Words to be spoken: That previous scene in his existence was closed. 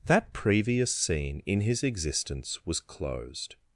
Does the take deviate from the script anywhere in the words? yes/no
no